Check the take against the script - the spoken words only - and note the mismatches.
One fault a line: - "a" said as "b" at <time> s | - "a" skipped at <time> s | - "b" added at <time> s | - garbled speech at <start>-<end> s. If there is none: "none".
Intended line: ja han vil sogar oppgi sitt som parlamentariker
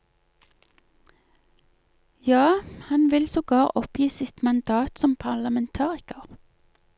- "mandat" added at 4.4 s